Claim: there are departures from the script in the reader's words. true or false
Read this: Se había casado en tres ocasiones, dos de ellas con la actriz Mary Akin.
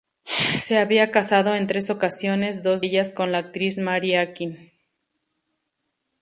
true